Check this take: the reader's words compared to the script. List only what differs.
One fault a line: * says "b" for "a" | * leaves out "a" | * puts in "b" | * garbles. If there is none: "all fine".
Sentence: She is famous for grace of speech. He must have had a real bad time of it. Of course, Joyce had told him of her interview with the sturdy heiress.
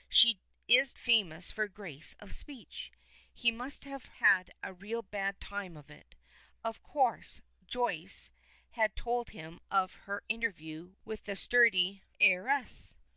all fine